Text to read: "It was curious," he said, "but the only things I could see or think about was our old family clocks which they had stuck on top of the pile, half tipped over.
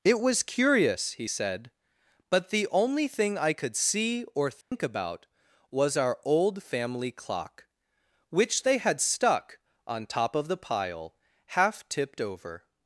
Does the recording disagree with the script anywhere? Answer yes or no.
yes